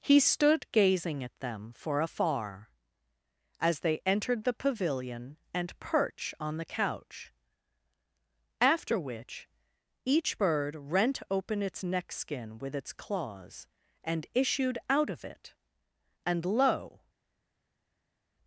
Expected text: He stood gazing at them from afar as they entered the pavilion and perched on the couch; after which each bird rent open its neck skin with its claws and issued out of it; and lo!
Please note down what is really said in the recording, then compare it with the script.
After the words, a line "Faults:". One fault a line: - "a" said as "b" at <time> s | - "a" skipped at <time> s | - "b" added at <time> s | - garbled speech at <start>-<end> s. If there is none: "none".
He stood gazing at them for afar as they entered the pavilion and perch on the couch; after which each bird rent open its neck skin with its claws and issued out of it; and lo!
Faults:
- "from" said as "for" at 1.7 s
- "perched" said as "perch" at 5.8 s